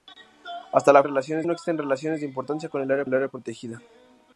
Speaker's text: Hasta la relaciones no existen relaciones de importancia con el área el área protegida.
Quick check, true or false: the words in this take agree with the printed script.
true